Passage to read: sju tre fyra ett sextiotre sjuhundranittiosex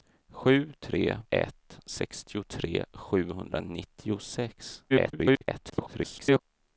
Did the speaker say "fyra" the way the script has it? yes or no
no